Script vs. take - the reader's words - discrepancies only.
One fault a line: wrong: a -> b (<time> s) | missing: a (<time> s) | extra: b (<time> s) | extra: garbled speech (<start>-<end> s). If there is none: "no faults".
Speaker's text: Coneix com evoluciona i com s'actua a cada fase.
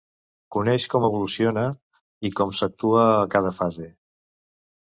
no faults